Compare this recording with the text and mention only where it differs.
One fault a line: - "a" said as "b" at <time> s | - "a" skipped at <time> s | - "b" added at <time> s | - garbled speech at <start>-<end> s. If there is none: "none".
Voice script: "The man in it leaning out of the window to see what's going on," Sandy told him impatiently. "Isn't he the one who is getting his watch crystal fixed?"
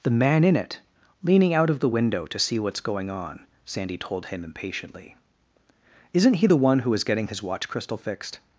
none